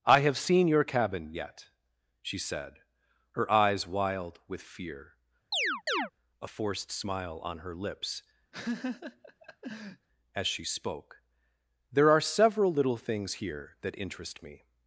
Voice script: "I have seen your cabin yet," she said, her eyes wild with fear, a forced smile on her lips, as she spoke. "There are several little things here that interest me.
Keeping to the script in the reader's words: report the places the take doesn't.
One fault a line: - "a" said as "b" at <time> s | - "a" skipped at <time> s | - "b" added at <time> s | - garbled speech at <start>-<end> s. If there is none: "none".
none